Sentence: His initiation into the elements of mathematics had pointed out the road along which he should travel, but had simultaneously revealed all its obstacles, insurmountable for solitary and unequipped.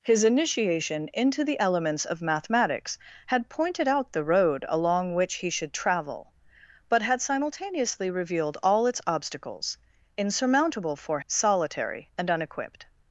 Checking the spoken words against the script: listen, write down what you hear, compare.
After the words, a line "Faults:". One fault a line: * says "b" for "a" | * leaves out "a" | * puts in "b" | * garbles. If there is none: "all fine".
His initiation into the elements of mathematics had pointed out the road along which he should travel, but had simultaneously revealed all its obstacles, insurmountable for solitary and unequipped.
Faults:
all fine